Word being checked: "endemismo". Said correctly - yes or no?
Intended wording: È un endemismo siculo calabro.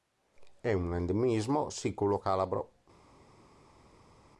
yes